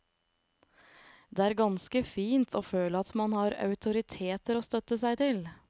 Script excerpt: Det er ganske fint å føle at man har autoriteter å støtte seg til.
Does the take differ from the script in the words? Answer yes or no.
no